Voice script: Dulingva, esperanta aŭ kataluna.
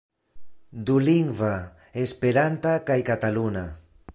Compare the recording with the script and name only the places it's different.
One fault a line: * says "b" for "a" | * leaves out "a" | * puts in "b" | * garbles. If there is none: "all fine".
* says "kaj" for "aŭ"